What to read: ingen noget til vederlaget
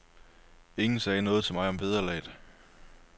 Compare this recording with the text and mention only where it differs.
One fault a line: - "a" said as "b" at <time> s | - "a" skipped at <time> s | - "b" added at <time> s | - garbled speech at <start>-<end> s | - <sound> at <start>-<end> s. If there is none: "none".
- "sagde" added at 1.0 s
- "mig om" added at 1.5 s